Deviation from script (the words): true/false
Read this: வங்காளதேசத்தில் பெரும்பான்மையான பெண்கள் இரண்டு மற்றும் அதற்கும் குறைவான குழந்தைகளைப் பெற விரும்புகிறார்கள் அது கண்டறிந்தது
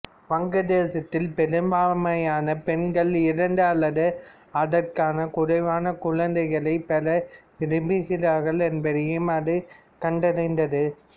true